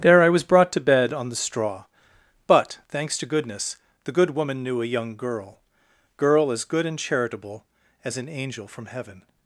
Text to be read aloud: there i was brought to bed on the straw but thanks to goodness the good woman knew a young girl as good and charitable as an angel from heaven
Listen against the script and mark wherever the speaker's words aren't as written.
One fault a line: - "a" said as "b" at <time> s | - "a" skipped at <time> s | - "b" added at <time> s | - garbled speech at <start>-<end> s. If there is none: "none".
- "girl" added at 6.2 s